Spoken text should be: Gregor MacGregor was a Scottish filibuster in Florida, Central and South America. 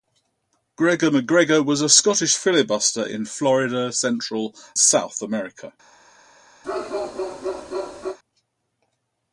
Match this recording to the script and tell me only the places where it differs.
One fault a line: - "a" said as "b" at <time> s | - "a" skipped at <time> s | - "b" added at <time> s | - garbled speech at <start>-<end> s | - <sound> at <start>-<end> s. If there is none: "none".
- "and" skipped at 4.5 s
- bark at 6.6-8.2 s